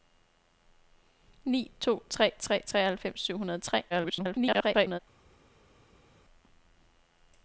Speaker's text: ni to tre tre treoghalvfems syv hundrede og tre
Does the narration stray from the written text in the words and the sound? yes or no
yes